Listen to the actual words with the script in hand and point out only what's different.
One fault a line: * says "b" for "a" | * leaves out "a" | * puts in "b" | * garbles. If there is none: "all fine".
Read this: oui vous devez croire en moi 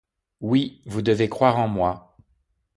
all fine